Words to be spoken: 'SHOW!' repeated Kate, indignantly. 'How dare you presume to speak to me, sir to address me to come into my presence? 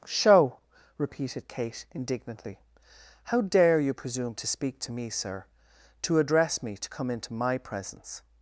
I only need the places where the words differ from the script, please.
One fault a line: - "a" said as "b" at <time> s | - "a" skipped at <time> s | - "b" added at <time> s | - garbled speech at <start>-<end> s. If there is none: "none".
none